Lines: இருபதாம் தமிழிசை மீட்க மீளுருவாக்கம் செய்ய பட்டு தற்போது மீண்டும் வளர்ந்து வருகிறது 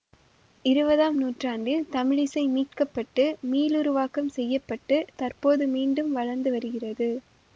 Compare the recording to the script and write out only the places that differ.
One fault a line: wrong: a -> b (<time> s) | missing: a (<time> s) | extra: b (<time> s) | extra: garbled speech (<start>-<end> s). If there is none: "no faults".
extra: நூற்றாண்டில் (1.2 s)
extra: பட்டு (2.9 s)